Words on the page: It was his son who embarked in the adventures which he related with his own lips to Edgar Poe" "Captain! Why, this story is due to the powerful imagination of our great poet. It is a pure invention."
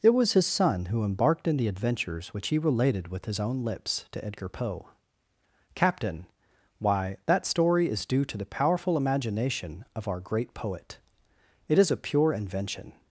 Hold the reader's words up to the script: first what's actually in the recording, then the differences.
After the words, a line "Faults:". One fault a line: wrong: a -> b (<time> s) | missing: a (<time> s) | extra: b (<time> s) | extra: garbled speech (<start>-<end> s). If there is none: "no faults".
It was his son who embarked in the adventures which he related with his own lips to Edgar Poe" "Captain! Why, that story is due to the powerful imagination of our great poet. It is a pure invention."
Faults:
wrong: this -> that (7.3 s)